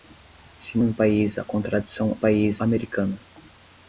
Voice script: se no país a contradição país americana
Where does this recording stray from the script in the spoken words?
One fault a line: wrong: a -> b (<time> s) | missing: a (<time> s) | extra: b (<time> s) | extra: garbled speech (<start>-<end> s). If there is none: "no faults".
no faults